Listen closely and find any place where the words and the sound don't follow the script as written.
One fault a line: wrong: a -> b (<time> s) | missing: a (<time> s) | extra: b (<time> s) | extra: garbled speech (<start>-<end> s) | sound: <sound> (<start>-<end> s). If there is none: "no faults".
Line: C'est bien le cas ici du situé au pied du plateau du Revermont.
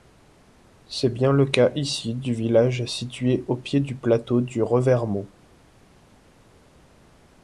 extra: village (2.3 s)